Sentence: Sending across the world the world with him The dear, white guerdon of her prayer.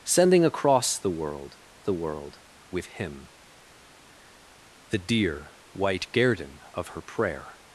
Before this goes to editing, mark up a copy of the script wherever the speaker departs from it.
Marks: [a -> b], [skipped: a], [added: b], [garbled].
Sending across the world the world with him The dear, white guerdon of her prayer.